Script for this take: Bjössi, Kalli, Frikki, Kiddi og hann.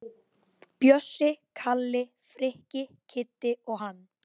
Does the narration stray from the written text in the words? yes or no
no